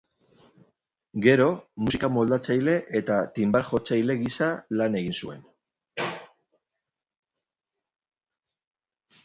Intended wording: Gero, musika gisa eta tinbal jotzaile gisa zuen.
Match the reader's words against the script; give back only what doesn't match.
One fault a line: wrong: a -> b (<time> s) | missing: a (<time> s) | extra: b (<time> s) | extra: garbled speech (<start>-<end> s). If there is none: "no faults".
wrong: gisa -> moldatzaile (2.1 s)
extra: lan egin (4.8 s)